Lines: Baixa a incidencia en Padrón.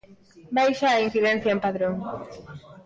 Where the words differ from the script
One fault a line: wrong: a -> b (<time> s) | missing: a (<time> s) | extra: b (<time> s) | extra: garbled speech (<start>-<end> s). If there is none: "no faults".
no faults